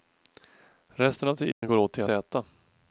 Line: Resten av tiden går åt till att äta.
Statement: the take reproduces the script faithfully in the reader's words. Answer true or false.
false